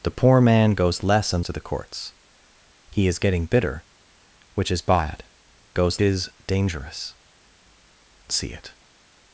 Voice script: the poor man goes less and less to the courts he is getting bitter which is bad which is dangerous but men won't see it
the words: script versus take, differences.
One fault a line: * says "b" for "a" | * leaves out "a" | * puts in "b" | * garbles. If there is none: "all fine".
* leaves out "less"
* says "goes" for "which"
* leaves out "but men won't"